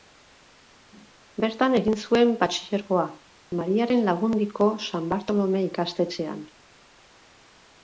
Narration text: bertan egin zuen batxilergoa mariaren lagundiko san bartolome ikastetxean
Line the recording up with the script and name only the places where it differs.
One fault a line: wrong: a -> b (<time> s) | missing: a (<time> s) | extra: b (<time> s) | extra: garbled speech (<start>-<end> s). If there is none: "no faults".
no faults